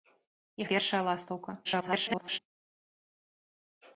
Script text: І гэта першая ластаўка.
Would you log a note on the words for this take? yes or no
yes